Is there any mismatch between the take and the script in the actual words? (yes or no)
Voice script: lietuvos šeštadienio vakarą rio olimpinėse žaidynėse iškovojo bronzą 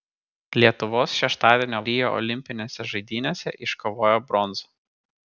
yes